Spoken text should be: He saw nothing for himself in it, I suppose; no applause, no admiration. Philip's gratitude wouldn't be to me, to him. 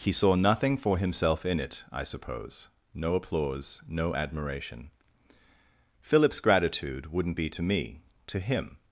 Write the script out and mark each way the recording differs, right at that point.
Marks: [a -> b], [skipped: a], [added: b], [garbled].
He saw nothing for himself in it, I suppose; no applause, no admiration. Philip's gratitude wouldn't be to me, to him.